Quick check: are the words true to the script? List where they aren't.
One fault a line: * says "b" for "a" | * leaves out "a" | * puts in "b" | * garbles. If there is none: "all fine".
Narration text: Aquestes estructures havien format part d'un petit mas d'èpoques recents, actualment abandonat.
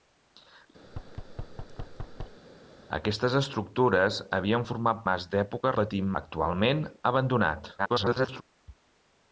* leaves out "part d'un petit"
* says "petit" for "recents"
* garbles